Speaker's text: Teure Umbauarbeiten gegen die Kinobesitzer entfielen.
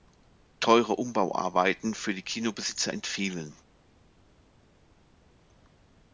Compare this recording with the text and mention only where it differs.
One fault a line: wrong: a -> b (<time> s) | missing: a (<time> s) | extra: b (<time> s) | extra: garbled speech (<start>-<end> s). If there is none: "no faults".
wrong: gegen -> für (1.9 s)